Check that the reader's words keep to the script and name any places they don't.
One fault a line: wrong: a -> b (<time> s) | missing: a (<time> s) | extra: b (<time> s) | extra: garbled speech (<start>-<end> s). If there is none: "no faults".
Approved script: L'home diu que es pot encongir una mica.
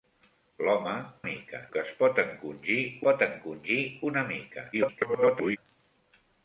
wrong: diu -> mica (1.3 s)
extra: pot encongir (3.1 s)
extra: garbled speech (4.7-5.6 s)